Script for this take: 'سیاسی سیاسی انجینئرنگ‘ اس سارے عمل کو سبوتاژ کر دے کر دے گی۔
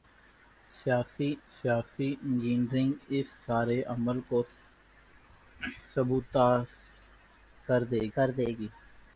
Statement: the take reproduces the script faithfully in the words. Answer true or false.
true